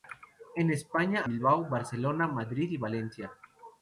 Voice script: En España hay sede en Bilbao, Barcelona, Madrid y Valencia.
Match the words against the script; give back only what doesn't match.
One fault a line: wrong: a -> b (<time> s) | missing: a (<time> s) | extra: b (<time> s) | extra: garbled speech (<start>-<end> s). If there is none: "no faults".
missing: hay sede en (1.2 s)